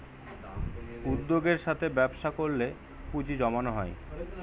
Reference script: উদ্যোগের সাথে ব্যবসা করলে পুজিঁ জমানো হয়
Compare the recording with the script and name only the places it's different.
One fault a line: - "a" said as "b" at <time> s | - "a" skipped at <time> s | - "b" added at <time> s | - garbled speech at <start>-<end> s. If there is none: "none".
none